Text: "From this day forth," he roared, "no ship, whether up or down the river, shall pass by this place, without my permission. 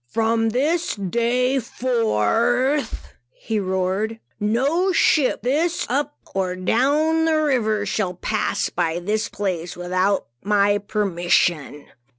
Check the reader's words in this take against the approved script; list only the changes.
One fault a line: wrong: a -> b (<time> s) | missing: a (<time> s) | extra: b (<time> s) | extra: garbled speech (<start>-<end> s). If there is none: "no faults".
wrong: whether -> this (5.4 s)